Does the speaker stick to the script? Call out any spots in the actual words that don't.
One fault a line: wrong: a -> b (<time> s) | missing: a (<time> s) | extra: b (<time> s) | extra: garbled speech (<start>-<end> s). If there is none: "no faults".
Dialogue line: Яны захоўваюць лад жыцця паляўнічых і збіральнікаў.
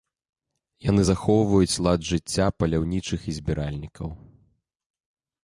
no faults